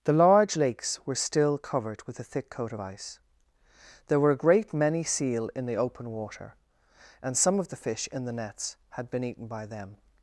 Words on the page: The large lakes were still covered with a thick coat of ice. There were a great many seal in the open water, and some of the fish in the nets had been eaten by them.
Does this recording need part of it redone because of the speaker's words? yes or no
no